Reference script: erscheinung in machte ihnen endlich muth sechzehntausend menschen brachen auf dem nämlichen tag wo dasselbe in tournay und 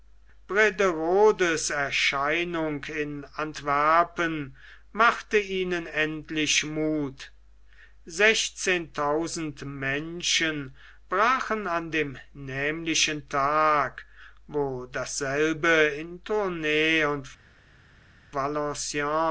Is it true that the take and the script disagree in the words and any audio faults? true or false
true